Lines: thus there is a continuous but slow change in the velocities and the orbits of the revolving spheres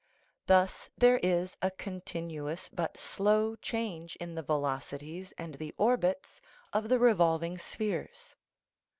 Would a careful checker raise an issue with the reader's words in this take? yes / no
no